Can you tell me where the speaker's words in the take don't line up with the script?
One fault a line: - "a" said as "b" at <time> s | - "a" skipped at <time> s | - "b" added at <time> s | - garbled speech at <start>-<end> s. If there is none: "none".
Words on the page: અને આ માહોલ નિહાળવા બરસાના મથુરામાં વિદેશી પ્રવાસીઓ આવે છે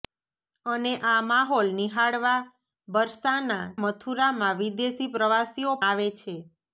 none